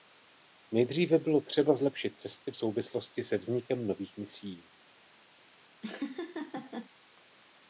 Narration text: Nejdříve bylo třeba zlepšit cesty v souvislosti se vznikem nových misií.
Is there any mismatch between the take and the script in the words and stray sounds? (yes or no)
yes